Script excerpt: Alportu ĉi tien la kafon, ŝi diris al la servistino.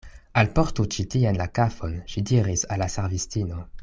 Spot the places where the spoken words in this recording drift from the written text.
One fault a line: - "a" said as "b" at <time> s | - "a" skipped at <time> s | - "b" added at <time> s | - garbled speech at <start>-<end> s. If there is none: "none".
none